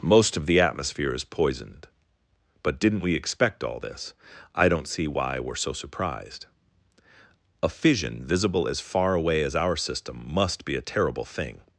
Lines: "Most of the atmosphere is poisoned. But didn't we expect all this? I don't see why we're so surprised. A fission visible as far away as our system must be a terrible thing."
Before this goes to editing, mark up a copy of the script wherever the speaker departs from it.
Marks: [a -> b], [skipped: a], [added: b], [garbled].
"Most of the atmosphere is poisoned. But didn't we expect all this? I don't see why we're so surprised. A fission visible as far away as our system must be a terrible thing."